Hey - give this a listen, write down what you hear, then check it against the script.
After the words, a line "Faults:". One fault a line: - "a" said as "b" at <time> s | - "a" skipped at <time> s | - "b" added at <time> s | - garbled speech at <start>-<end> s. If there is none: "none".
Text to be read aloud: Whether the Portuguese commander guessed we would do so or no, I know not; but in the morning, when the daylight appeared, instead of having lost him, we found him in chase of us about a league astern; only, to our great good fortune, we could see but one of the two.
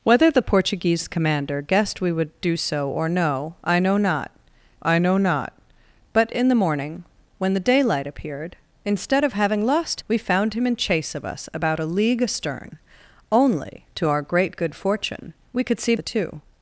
Whether the Portuguese commander guessed we would do so or no, I know not I know not; but in the morning, when the daylight appeared, instead of having lost we found him in chase of us about a league astern; only, to our great good fortune, we could see the two.
Faults:
- "I know not" added at 4.8 s
- "him" skipped at 10.0 s
- "but one of" skipped at 15.9 s